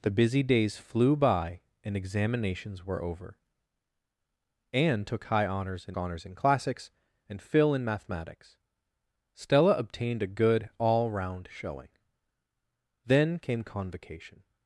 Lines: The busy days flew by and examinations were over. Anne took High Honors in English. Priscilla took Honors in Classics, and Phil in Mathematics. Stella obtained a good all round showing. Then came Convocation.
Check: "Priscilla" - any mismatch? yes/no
yes